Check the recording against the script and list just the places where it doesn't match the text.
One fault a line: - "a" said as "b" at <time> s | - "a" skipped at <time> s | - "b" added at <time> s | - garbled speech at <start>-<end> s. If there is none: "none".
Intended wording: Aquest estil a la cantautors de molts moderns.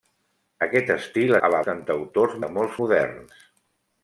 none